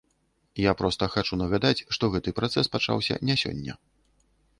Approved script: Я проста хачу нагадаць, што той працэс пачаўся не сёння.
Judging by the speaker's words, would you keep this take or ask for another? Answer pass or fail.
fail